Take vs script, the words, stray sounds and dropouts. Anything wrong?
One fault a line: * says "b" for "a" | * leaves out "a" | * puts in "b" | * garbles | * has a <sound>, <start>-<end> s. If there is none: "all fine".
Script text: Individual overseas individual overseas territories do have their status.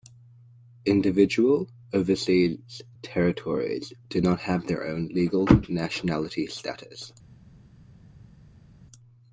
* leaves out "individual overseas"
* puts in "not"
* puts in "own legal nationality"